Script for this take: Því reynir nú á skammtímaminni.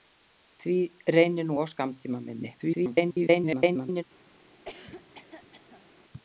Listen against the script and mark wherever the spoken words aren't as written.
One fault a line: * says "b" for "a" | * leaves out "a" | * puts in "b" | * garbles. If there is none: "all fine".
* garbles